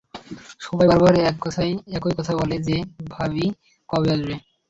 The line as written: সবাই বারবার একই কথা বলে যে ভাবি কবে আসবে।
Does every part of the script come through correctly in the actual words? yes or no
yes